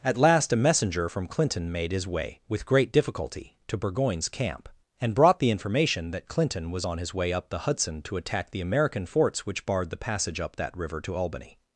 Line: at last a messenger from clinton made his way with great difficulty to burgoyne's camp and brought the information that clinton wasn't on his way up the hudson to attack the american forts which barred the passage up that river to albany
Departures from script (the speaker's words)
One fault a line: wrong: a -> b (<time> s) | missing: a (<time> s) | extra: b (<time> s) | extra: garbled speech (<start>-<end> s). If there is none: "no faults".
wrong: wasn't -> was (6.7 s)